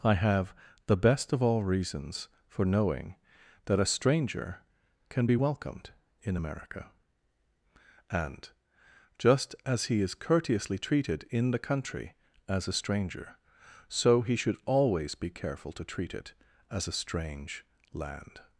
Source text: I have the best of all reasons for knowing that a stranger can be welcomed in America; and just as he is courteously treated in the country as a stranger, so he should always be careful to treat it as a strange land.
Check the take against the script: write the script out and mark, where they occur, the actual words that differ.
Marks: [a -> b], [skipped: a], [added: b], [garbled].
I have the best of all reasons for knowing that a stranger can be welcomed in America; and just as he is courteously treated in the country as a stranger, so he should always be careful to treat it as a strange land.